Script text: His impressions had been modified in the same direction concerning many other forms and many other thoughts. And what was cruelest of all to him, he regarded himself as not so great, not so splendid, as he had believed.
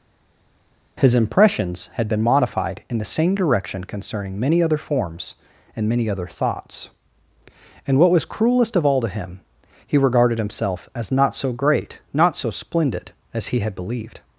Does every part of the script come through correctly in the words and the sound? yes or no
yes